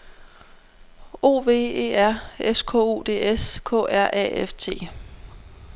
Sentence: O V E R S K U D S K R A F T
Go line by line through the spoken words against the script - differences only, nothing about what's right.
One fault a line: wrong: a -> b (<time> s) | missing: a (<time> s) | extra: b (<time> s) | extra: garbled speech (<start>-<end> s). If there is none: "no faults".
no faults